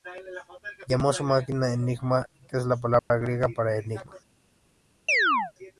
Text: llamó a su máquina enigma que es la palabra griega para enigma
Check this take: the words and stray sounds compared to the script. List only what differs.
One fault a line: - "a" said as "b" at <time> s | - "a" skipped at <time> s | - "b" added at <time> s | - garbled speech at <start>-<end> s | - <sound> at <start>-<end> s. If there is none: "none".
- dropout at 3.0-3.1 s
- chirp at 5.1-5.5 s